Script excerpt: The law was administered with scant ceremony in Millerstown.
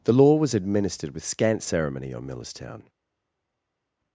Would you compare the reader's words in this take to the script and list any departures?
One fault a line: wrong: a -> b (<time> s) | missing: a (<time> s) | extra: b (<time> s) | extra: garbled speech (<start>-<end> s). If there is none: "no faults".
wrong: in -> on (2.1 s)